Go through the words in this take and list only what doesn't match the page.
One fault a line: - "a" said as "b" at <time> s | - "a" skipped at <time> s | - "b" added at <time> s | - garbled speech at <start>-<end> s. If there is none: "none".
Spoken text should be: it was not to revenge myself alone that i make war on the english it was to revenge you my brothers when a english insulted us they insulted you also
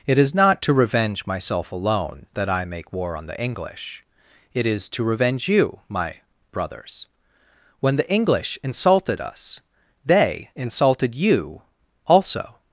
- "was" said as "is" at 0.2 s
- "was" said as "is" at 4.7 s
- "a" said as "the" at 8.0 s